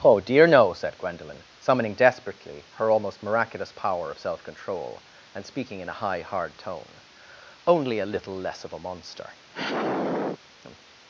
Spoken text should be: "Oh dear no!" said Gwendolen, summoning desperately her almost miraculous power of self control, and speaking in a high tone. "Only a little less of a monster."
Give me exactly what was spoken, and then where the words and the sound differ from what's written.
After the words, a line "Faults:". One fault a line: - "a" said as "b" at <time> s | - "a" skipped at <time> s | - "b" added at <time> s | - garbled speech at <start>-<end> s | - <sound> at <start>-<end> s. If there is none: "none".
"Oh dear no!" said Gwendolen, summoning desperately her almost miraculous power of self control, and speaking in a high hard tone. "Only a little less of a monster."
Faults:
- "hard" added at 6.2 s
- sigh at 9.5-10.4 s